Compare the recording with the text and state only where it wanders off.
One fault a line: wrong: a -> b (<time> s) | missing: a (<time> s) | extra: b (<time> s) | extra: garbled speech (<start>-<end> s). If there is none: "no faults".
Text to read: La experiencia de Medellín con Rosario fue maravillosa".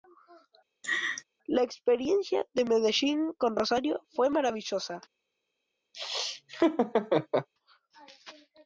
no faults